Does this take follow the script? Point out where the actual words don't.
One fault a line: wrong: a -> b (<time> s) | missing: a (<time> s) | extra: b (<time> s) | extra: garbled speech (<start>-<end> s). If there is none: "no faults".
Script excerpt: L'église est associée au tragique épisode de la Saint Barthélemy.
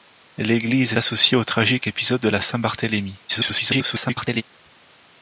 missing: est (0.9 s)
extra: garbled speech (3.3-4.4 s)